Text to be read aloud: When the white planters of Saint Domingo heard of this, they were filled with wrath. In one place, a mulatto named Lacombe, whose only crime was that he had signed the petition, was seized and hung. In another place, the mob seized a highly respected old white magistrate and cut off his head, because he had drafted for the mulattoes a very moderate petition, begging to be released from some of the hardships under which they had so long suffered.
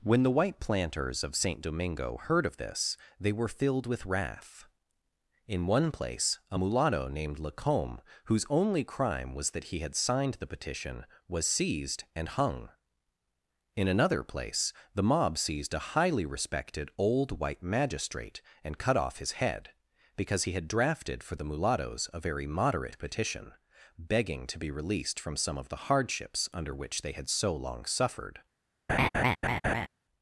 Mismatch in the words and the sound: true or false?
true